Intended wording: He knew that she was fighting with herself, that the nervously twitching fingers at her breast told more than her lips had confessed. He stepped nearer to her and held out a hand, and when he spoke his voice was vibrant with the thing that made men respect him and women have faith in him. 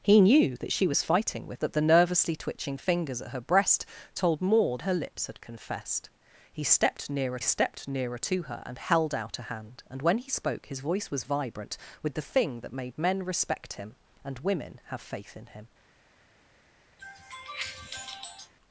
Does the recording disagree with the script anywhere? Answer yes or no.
yes